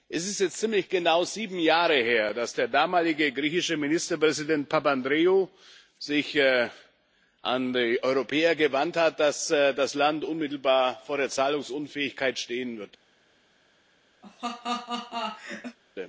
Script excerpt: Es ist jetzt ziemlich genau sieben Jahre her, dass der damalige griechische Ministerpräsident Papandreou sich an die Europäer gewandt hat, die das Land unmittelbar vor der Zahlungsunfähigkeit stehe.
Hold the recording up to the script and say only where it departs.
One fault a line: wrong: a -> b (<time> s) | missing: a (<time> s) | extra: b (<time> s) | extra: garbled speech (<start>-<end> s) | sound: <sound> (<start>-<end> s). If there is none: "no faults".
wrong: die -> dass (9.2 s)
sound: laugh (14.2-15.8 s)